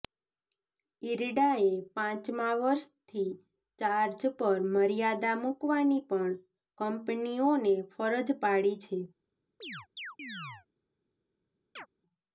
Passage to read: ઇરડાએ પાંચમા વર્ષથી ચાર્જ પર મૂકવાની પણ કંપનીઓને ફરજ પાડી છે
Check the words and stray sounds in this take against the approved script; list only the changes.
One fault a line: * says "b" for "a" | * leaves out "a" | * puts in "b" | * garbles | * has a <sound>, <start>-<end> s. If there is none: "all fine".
* puts in "મર્યાદા"
* has a chirp, 9.6-10.7 s
* has a chirp, 11.8-11.9 s